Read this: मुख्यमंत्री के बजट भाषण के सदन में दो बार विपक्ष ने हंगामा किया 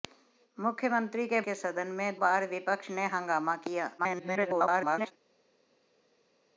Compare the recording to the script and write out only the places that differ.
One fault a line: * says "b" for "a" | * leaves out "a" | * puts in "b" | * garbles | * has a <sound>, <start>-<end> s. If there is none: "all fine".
* leaves out "बजट भाषण"
* leaves out "दो"
* garbles